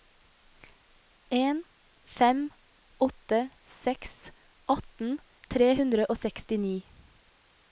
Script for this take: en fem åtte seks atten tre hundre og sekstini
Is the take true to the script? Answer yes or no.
yes